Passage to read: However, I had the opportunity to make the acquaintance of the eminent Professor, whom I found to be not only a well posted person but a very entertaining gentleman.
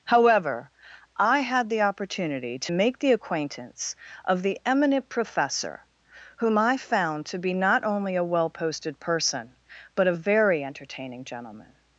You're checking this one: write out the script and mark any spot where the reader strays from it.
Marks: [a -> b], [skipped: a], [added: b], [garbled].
However, I had the opportunity to make the acquaintance of the eminent Professor, whom I found to be not only a well posted person but a very entertaining gentleman.